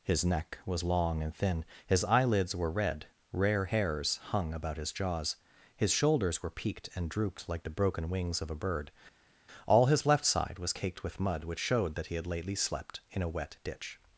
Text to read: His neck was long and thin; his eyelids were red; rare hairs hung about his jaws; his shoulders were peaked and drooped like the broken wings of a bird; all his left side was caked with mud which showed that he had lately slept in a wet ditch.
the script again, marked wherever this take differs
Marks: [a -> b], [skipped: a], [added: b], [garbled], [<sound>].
His neck was long and thin; his eyelids were red; rare hairs hung about his jaws; his shoulders were peaked and drooped like the broken wings of a bird; all his left side was caked with mud which showed that he had lately slept in a wet ditch.